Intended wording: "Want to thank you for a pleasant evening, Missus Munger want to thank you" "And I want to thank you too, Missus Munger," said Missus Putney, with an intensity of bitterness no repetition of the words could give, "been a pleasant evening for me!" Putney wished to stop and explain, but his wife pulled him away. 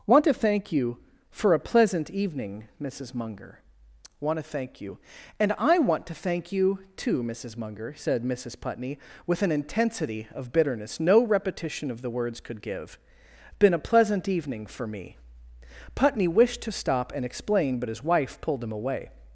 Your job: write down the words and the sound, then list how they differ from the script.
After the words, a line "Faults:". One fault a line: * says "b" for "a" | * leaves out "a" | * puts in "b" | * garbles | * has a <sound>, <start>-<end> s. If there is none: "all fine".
"Want to thank you for a pleasant evening, Missus Munger want to thank you" "And I want to thank you too, Missus Munger," said Missus Putney, with an intensity of bitterness no repetition of the words could give, "been a pleasant evening for me!" Putney wished to stop and explain, but his wife pulled him away.
Faults:
all fine